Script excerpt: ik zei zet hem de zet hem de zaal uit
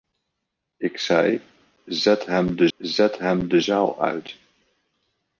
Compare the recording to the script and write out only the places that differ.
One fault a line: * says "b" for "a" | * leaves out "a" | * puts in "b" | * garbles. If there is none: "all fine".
all fine